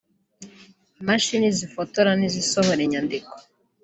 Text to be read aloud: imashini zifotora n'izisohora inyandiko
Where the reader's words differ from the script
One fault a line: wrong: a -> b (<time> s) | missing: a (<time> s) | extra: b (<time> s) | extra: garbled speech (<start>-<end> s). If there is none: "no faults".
no faults